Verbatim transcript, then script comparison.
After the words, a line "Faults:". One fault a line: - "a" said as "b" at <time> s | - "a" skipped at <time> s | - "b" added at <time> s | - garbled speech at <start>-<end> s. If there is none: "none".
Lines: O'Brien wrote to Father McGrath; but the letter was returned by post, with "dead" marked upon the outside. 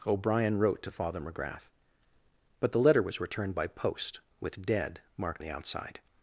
O'Brien wrote to Father McGrath; but the letter was returned by post, with "dead" marked the outside.
Faults:
- "upon" skipped at 5.4 s